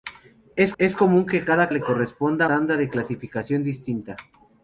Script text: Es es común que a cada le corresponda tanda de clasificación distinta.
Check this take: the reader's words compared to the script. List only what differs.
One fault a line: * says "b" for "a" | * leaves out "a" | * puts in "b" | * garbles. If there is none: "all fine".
all fine